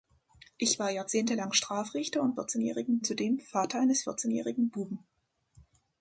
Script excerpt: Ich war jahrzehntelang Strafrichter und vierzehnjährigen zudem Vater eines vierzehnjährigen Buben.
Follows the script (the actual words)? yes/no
yes